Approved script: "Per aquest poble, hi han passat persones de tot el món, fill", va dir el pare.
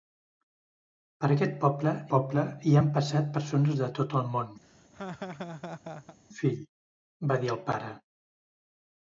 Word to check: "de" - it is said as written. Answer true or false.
true